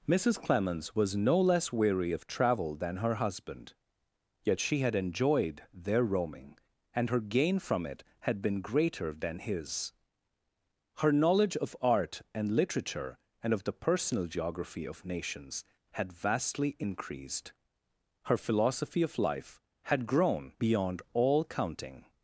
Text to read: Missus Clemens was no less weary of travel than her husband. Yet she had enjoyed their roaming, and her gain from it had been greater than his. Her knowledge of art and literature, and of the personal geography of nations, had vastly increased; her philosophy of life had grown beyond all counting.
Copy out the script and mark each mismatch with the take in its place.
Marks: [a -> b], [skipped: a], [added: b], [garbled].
Missus Clemens was no less weary of travel than her husband. Yet she had enjoyed their roaming, and her gain from it had been greater than his. Her knowledge of art and literature, and of the personal geography of nations, had vastly increased; her philosophy of life had grown beyond all counting.